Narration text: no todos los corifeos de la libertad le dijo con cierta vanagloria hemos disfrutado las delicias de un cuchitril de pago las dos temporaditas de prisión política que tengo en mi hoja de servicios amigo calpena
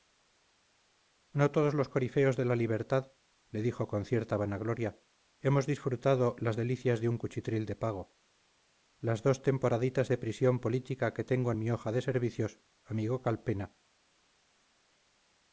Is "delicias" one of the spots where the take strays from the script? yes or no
no